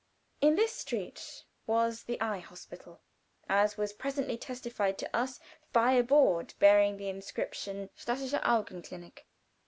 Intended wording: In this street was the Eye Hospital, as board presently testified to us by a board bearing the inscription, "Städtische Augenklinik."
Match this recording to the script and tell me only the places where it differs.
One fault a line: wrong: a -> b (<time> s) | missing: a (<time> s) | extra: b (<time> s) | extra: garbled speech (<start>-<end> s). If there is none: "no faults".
wrong: board -> was (3.8 s)